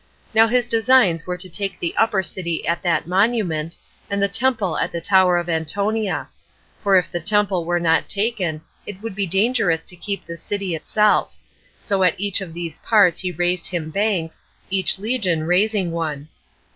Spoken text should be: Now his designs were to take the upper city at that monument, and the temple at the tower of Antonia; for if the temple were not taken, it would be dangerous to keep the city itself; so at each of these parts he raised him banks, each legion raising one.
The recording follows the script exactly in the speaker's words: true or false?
true